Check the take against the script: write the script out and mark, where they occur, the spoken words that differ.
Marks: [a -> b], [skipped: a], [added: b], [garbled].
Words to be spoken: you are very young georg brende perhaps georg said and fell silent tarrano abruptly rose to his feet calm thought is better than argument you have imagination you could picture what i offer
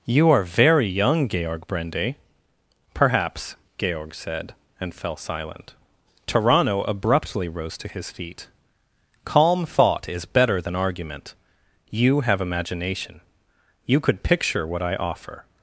you are very young georg brende perhaps georg said and fell silent tarrano abruptly rose to his feet calm thought is better than argument you have imagination you could picture what i offer